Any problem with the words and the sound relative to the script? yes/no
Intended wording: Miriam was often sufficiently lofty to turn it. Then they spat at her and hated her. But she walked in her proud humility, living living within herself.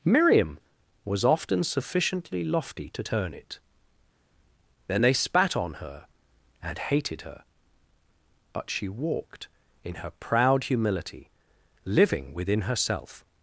yes